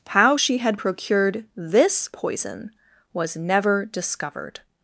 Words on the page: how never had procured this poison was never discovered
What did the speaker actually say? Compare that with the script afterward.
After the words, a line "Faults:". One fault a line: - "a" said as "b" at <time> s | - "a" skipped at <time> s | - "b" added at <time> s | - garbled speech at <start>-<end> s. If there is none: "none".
how she had procured this poison was never discovered
Faults:
- "never" said as "she" at 0.3 s